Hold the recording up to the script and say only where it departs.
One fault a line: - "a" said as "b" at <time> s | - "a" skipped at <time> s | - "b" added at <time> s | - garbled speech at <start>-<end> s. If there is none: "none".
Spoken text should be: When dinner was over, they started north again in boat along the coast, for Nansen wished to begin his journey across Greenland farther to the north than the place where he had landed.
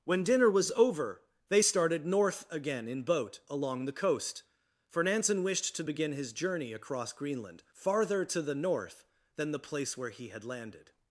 none